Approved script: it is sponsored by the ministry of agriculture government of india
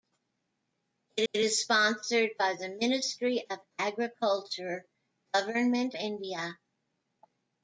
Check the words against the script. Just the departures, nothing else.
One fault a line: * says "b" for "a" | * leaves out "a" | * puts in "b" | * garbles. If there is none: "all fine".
* puts in "it"
* leaves out "of"